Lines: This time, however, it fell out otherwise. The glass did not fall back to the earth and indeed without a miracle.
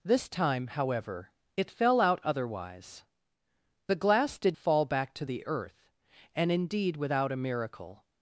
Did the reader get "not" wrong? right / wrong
wrong